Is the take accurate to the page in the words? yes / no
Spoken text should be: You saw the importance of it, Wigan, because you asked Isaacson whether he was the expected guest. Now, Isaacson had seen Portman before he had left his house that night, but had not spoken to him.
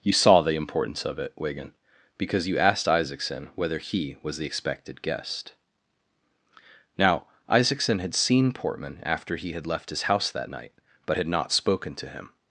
no